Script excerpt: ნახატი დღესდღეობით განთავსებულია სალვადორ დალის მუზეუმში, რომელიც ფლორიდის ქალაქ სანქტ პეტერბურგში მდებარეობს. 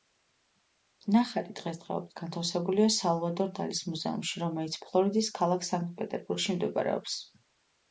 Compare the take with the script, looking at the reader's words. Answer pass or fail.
pass